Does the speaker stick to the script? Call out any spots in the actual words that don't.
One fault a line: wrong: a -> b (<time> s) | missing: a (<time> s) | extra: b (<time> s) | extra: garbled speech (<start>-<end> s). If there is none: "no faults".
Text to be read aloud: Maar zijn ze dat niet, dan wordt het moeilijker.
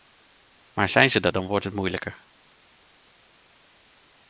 missing: niet (1.3 s)